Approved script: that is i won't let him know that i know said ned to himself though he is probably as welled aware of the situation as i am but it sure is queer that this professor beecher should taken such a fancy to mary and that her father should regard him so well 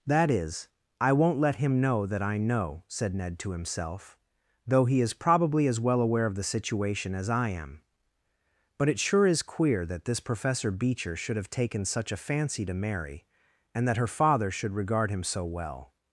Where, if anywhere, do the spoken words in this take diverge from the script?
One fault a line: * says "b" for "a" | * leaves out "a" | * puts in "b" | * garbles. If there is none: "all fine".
* says "well" for "welled"
* puts in "have"